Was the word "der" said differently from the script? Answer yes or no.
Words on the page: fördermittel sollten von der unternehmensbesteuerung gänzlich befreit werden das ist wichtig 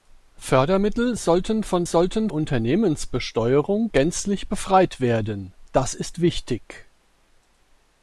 yes